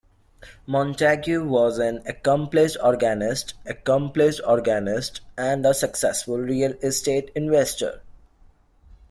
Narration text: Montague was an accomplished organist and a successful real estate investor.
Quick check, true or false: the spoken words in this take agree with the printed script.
false